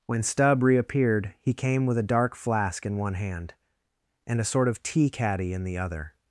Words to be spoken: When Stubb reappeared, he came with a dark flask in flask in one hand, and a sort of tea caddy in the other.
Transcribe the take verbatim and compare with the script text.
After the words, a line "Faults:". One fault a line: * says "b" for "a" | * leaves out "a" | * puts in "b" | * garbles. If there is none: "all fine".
When Stubb reappeared, he came with a dark flask in one hand, and a sort of tea caddy in the other.
Faults:
* leaves out "flask in"